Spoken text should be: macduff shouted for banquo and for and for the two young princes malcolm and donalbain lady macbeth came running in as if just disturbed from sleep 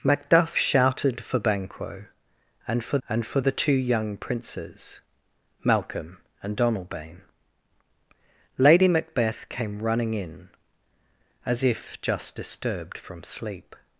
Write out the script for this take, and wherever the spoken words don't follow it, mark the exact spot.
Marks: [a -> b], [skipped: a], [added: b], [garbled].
macduff shouted for banquo and for and for the two young princes malcolm and donalbain lady macbeth came running in as if just disturbed from sleep